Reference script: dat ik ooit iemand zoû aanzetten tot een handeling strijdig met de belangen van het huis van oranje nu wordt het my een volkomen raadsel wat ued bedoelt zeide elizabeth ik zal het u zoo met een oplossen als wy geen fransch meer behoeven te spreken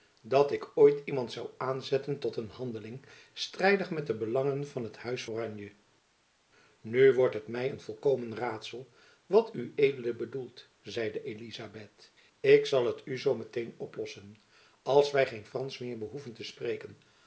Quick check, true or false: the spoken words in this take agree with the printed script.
false